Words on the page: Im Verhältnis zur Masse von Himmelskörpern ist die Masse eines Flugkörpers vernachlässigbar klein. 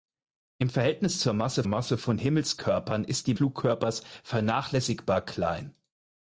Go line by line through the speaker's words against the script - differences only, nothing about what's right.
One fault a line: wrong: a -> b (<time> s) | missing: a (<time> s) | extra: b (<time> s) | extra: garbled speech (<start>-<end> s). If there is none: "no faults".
extra: Masse (1.6 s)
missing: Masse eines (3.3 s)